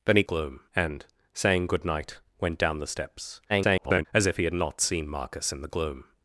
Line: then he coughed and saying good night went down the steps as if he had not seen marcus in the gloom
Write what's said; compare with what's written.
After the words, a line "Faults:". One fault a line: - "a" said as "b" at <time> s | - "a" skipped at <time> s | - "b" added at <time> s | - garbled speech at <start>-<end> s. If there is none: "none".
then he gloom and saying good night went down the steps [garbled] as if he had not seen marcus in the gloom
Faults:
- "coughed" said as "gloom" at 0.2 s
- garbled speech at 3.5-4.0 s